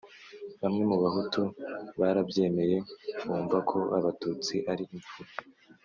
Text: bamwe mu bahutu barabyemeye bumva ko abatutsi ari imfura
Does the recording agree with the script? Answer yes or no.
yes